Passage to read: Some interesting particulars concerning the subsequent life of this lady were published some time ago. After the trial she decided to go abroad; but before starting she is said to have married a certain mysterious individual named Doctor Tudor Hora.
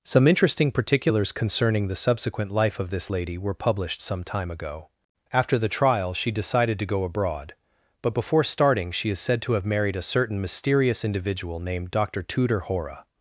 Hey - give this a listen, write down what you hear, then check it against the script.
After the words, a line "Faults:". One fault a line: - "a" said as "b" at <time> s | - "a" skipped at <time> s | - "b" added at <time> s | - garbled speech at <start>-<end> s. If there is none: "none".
Some interesting particulars concerning the subsequent life of this lady were published some time ago. After the trial she decided to go abroad; but before starting she is said to have married a certain mysterious individual named Doctor Tudor Hora.
Faults:
none